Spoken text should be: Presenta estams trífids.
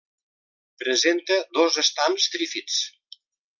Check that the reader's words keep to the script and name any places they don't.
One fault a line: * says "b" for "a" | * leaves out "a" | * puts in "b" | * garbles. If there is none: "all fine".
* puts in "dos"